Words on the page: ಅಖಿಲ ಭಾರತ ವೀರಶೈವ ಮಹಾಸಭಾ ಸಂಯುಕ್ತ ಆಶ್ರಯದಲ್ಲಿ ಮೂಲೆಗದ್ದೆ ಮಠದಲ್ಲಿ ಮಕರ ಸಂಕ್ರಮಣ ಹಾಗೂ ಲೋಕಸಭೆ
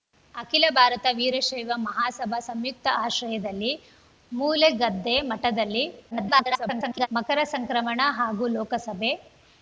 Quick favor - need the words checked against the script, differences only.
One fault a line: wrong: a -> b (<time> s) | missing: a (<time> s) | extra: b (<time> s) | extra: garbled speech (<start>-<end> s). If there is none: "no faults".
extra: garbled speech (6.1-7.1 s)